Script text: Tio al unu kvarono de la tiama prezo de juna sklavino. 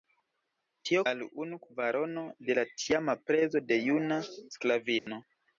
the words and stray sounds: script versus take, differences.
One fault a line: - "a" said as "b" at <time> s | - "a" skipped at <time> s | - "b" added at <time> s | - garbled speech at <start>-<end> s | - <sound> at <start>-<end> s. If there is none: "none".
- dropout at 5.0-5.1 s